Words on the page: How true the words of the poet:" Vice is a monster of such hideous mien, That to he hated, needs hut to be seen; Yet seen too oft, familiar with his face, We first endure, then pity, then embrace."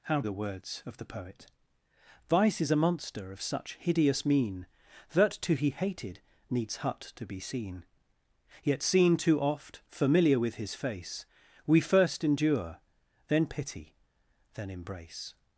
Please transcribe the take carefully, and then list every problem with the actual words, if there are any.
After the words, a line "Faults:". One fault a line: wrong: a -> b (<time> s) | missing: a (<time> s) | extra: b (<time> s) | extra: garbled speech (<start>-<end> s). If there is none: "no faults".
How the words of the poet:" Vice is a monster of such hideous mien, That to he hated, needs hut to be seen; Yet seen too oft, familiar with his face, We first endure, then pity, then embrace."
Faults:
missing: true (0.2 s)